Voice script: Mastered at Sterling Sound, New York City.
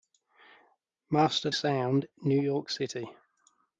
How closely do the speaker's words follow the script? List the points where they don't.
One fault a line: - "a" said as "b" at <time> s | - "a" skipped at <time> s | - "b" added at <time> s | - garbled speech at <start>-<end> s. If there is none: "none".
- "at Sterling" skipped at 1.6 s